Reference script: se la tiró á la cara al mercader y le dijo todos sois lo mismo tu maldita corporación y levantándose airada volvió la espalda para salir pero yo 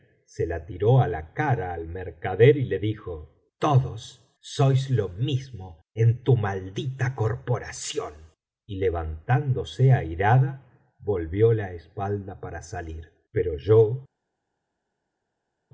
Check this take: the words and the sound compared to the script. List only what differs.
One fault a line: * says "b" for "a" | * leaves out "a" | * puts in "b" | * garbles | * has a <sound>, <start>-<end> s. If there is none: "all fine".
* puts in "en"